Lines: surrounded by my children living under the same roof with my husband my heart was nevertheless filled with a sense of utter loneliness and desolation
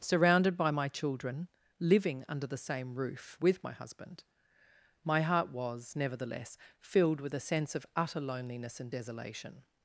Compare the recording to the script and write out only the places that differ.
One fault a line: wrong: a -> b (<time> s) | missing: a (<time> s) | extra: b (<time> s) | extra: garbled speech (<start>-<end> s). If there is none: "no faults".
no faults